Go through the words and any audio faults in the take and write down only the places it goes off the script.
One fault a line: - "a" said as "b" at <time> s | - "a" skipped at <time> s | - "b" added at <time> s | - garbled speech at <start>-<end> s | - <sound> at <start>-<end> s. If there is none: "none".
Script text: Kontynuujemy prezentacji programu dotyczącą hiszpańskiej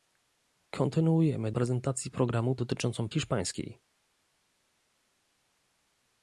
none